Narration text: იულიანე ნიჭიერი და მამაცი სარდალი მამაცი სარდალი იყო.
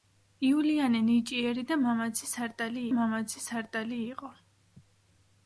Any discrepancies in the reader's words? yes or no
no